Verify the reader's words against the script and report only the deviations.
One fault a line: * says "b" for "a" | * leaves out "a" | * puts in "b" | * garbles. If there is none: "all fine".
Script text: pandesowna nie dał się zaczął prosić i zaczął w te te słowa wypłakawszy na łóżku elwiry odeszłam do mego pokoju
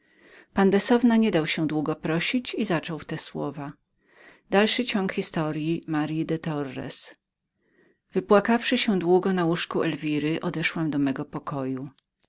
* says "długo" for "zaczął"
* leaves out "te"
* puts in "się długo"